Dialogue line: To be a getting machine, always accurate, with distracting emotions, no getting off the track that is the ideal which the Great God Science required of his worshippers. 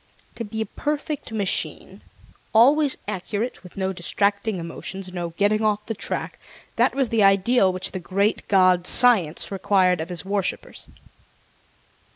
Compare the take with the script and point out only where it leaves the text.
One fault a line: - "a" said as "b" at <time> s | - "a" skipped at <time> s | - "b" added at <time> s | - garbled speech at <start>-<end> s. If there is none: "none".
- "getting" said as "perfect" at 0.6 s
- "no" added at 3.8 s
- "is" said as "was" at 6.9 s